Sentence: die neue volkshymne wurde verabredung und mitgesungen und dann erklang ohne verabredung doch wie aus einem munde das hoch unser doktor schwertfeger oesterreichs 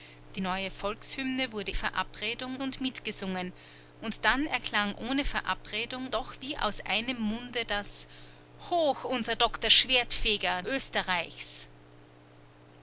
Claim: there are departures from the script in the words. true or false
false